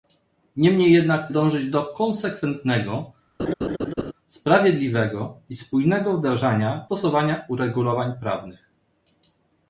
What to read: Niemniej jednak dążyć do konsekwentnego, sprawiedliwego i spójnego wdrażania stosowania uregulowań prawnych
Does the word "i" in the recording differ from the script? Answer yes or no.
no